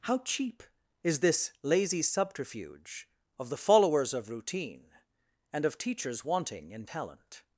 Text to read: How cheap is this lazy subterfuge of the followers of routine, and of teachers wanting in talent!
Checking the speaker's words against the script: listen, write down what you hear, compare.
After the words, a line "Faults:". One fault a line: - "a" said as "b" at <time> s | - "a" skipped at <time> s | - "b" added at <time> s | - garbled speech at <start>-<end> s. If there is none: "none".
How cheap is this lazy subterfuge of the followers of routine, and of teachers wanting in talent!
Faults:
none